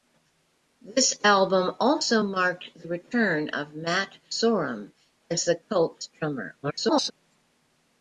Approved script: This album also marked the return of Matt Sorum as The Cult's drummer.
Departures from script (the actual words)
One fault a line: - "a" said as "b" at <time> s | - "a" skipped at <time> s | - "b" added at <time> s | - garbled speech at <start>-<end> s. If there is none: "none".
- garbled speech at 6.6-7.1 s